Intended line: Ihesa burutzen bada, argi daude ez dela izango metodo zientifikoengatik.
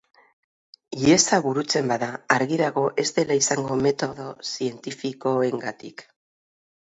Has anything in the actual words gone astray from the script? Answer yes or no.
yes